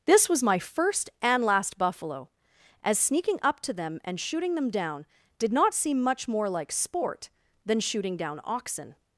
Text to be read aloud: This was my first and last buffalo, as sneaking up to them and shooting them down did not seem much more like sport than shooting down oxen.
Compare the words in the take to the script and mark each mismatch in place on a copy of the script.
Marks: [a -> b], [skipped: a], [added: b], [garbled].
This was my first and last buffalo, as sneaking up to them and shooting them down did not seem much more like sport than shooting down oxen.